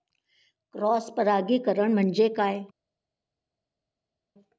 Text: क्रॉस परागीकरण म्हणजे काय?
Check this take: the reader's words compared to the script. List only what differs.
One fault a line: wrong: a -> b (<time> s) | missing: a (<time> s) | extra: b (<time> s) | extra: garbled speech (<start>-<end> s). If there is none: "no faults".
no faults